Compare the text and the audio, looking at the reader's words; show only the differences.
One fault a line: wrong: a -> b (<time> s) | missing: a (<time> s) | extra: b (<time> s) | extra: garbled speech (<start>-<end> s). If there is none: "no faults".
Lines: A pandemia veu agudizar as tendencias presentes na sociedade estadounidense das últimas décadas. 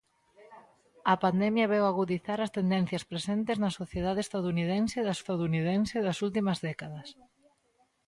extra: estadounidense das (5.2 s)